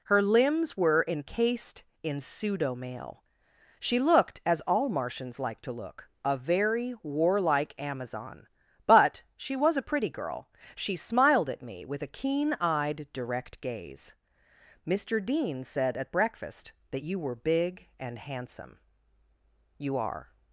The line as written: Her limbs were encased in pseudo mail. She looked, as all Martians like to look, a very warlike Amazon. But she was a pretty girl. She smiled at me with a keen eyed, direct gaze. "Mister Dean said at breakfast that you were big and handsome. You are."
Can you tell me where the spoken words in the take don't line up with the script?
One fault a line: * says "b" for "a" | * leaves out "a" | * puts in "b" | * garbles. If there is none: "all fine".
all fine